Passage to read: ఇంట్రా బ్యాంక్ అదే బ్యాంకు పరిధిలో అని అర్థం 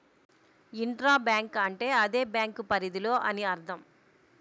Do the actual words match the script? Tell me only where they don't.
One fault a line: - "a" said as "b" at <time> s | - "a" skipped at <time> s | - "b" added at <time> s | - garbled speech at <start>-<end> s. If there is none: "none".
- "అంటే" added at 1.6 s